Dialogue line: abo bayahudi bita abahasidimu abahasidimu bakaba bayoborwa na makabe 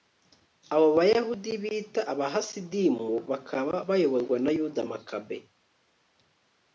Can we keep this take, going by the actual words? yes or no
no